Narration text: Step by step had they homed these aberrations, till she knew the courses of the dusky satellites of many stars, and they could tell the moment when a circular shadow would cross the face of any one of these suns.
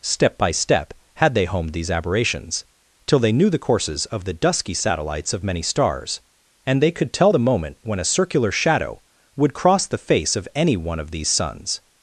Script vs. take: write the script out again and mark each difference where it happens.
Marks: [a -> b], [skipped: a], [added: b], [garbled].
Step by step had they homed these aberrations, till [she -> they] knew the courses of the dusky satellites of many stars, and they could tell the moment when a circular shadow would cross the face of any one of these suns.